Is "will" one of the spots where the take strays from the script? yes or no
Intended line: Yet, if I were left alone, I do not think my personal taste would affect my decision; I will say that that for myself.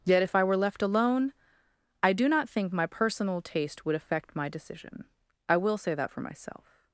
no